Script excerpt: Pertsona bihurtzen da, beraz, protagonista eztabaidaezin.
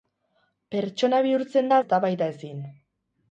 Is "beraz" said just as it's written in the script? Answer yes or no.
no